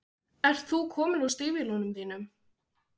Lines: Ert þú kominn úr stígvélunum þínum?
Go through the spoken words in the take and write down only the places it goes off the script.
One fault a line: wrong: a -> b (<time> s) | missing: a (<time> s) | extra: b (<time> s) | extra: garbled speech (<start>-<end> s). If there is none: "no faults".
no faults